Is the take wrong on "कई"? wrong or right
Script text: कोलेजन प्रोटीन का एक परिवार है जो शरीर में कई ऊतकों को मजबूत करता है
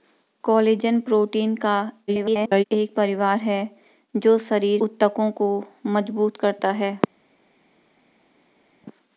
wrong